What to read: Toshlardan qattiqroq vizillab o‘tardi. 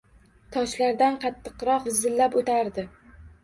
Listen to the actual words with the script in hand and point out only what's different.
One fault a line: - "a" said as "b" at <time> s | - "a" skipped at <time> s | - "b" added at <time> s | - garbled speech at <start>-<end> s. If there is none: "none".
none